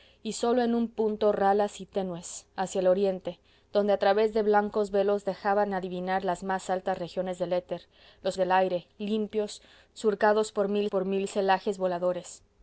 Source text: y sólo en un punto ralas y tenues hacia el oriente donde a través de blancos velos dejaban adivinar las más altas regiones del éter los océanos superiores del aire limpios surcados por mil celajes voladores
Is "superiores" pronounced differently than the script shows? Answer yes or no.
yes